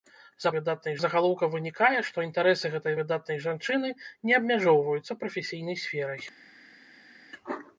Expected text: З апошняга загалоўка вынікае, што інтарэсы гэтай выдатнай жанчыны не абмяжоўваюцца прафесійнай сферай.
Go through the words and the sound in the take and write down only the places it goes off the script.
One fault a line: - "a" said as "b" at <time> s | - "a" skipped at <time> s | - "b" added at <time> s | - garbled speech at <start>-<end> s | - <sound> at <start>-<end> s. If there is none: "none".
- "апошняга" said as "выдатнай" at 0.6 s